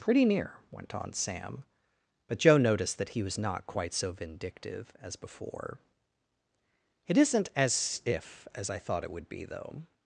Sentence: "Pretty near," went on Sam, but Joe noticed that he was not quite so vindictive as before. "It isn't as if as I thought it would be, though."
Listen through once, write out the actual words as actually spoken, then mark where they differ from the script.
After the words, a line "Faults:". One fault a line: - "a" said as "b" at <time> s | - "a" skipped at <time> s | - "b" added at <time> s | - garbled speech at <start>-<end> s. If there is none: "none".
"Pretty near," went on Sam, but Joe noticed that he was not quite so vindictive as before. "It isn't as if as I thought it would be, though."
Faults:
none